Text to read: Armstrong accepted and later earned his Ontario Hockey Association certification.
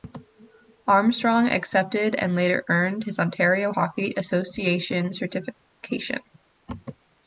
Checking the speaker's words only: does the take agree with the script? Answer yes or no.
yes